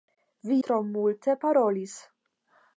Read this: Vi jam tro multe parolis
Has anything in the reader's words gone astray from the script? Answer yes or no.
yes